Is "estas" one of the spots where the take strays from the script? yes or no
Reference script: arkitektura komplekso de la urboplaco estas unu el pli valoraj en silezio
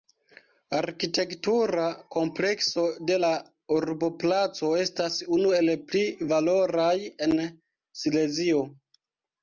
no